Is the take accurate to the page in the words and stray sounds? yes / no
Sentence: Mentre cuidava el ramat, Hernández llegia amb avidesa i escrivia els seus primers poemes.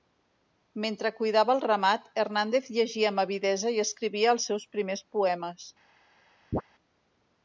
no